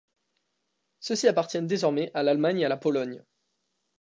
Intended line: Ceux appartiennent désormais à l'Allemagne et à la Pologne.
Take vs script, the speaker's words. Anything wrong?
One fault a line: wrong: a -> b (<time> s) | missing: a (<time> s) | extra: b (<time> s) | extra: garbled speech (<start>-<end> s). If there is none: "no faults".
extra: ci (1.1 s)